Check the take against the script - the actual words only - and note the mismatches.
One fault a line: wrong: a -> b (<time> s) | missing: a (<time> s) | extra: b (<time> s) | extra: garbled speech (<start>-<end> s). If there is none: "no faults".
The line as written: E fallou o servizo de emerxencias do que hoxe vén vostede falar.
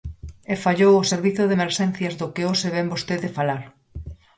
no faults